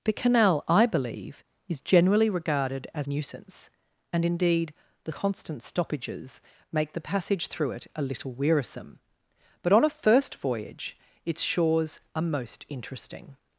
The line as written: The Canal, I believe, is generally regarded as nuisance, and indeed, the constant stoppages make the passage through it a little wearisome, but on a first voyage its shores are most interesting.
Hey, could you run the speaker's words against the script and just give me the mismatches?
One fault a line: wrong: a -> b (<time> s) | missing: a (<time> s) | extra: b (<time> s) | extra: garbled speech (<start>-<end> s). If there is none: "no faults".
no faults